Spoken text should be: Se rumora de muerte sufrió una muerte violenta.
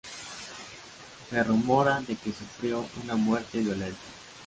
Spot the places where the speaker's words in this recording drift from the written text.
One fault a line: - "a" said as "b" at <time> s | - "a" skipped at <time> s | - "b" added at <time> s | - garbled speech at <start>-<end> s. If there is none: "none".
- "muerte" said as "que" at 2.2 s